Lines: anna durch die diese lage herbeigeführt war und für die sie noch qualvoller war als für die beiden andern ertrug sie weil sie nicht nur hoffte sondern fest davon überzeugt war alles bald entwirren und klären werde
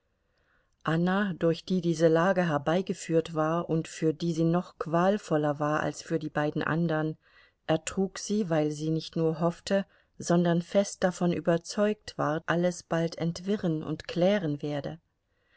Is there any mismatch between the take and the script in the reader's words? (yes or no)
no